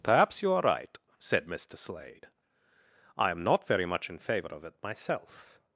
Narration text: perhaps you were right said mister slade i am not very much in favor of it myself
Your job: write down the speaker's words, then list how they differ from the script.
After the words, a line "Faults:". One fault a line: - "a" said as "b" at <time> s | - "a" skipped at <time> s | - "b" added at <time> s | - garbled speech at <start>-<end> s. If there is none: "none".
perhaps you are right said mister slade i am not very much in favor of it myself
Faults:
- "were" said as "are" at 0.5 s